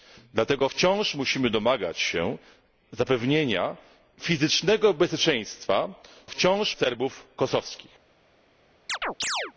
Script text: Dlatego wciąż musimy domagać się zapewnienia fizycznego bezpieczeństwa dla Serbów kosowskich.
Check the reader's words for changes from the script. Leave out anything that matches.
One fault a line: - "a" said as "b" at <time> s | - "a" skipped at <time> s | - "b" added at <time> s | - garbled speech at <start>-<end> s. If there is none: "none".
- "dla" said as "wciąż" at 6.3 s